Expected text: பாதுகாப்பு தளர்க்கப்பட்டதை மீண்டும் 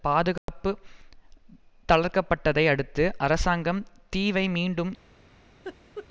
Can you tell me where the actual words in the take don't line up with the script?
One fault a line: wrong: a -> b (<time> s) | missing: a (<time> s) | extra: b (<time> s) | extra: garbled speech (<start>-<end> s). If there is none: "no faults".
extra: அடுத்து அரசாங்கம் தீவை (2.7 s)